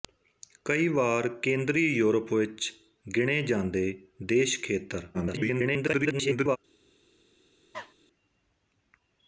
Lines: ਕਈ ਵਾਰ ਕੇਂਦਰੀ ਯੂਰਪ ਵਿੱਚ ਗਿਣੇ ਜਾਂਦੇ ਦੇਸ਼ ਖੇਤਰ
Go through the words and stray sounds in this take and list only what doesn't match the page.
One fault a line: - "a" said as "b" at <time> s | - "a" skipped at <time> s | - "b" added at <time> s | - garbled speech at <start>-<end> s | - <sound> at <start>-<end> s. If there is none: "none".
- garbled speech at 5.1-6.6 s
- cough at 7.7-7.9 s